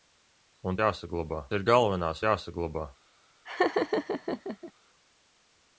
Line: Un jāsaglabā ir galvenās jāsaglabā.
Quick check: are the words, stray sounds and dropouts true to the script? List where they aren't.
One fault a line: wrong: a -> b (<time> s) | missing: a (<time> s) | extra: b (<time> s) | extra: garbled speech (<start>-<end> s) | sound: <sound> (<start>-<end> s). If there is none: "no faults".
sound: laugh (3.4-4.7 s)